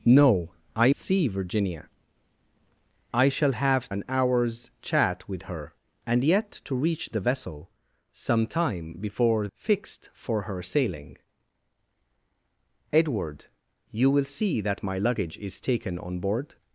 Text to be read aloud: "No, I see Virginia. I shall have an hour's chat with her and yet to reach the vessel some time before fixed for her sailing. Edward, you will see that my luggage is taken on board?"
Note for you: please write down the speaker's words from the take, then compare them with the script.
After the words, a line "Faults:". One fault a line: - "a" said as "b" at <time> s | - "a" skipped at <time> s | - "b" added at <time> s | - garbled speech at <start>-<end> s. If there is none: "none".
"No, I see Virginia. I shall have an hour's chat with her and yet to reach the vessel some time before fixed for her sailing. Edward, you will see that my luggage is taken on board?"
Faults:
none